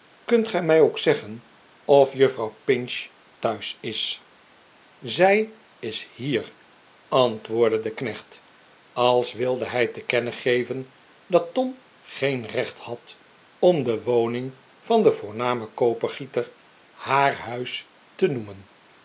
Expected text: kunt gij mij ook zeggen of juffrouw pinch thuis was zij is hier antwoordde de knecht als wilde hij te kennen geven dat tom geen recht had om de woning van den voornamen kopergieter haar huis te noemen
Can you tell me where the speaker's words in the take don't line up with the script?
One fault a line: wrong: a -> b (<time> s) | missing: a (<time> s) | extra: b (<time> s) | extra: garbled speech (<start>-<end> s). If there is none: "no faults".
wrong: was -> is (3.8 s)